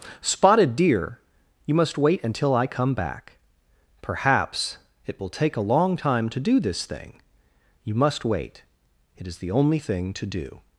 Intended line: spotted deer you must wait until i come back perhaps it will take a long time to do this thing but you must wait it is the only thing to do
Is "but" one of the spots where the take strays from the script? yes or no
yes